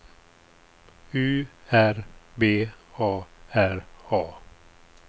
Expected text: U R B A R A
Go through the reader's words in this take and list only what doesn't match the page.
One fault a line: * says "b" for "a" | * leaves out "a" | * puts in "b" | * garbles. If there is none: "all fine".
all fine